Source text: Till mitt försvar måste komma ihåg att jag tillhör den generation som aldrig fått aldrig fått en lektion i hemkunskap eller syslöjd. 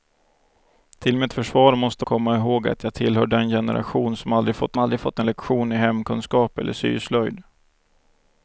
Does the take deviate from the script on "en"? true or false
false